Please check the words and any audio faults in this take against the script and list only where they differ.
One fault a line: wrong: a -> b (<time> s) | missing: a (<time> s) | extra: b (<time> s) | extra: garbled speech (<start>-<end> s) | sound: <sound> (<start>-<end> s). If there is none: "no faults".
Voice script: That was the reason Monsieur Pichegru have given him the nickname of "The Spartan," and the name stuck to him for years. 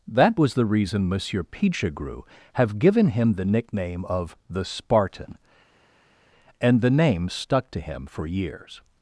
no faults